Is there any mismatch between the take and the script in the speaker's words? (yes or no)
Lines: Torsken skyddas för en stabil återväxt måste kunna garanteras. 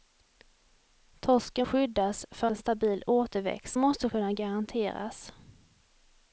no